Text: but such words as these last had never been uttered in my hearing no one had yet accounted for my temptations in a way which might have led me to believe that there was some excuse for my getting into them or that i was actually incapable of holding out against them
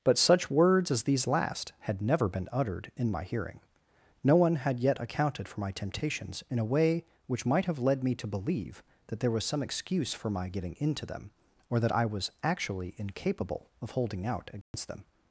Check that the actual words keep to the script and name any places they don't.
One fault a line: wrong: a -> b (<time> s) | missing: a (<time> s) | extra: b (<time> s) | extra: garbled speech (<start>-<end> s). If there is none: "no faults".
no faults